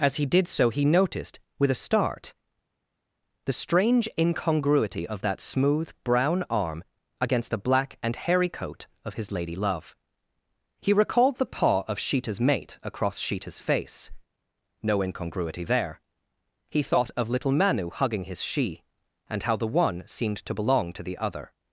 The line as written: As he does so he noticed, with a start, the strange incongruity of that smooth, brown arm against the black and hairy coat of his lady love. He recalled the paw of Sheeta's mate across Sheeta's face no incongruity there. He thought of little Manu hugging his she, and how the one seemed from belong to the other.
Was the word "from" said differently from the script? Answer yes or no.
yes